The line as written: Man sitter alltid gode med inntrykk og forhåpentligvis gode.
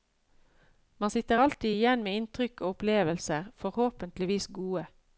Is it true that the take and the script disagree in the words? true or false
true